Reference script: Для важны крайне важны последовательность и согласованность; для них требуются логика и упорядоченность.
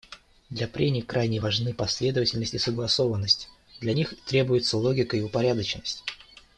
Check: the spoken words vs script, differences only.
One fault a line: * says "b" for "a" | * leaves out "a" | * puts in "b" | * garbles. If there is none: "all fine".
* says "прений" for "важны"